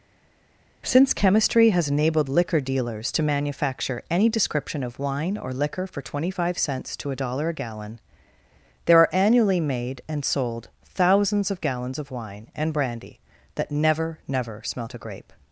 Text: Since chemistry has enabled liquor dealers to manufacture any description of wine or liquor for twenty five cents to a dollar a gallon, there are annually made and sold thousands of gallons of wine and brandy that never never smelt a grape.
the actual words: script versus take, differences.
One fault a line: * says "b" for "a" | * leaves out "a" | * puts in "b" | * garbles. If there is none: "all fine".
all fine